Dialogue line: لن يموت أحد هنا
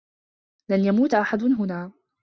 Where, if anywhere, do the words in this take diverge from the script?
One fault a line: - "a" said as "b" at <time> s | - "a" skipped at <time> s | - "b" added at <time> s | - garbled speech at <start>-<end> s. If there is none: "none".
none